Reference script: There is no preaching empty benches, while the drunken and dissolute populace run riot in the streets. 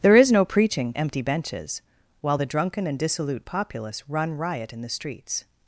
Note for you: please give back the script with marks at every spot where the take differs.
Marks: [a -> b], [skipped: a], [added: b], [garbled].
There is no preaching empty benches, while the drunken and dissolute populace run riot in the streets.